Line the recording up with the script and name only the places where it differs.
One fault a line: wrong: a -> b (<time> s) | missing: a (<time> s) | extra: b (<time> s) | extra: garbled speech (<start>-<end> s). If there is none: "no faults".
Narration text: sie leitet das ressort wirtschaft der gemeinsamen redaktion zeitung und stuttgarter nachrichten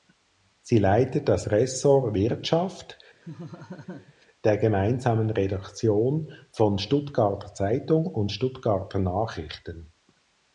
extra: von stuttgarter (6.5 s)